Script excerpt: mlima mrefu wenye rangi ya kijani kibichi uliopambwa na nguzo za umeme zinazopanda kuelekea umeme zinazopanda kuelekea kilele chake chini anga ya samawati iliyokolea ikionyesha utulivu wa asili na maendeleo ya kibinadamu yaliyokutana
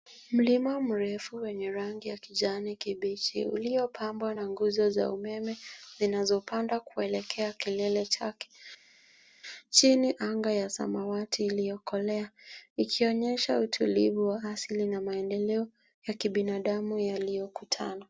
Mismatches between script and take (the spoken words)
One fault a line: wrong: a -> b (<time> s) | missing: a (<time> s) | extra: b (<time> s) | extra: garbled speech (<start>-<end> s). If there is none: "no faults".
missing: umeme zinazopanda kuelekea (7.5 s)